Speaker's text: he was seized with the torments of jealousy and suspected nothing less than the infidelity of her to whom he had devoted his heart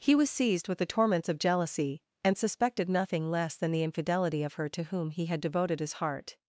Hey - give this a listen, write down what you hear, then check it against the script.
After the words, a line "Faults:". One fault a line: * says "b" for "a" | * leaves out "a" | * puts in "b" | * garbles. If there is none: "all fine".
he was seized with the torments of jealousy and suspected nothing less than the infidelity of her to whom he had devoted his heart
Faults:
all fine